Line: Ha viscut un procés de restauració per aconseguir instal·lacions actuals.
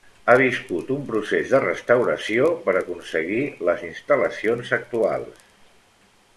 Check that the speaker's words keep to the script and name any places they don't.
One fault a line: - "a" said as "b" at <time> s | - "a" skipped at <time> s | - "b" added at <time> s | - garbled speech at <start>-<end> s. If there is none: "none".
- "les" added at 3.7 s